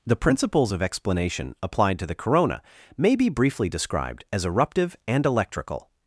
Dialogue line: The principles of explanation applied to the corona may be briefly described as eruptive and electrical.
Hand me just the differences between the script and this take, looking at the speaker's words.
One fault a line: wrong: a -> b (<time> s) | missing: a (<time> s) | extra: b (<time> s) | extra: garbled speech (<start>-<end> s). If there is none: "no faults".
no faults